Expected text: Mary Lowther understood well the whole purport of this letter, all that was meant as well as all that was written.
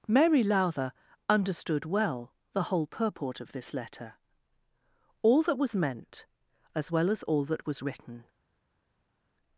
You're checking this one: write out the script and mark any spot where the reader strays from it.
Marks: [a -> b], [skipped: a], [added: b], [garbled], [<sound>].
Mary Lowther understood well the whole purport of this letter, all that was meant as well as all that was written.